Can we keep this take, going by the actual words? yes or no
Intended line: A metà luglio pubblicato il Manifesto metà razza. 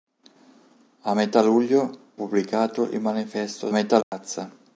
yes